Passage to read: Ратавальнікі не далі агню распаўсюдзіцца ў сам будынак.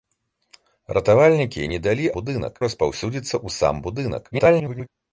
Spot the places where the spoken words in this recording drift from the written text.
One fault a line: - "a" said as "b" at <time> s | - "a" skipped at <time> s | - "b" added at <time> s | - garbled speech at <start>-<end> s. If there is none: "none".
- "агню" said as "будынак" at 2.2 s
- garbled speech at 4.3-4.9 s